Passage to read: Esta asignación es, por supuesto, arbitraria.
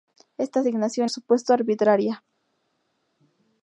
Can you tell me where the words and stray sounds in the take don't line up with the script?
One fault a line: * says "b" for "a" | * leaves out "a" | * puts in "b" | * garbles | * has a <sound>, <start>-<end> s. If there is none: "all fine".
* leaves out "es por"